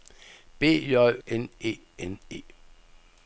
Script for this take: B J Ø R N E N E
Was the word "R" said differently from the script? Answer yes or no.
yes